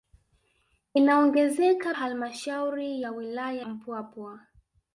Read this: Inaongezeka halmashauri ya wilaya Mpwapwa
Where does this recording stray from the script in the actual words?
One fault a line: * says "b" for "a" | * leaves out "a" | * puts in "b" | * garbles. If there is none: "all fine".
all fine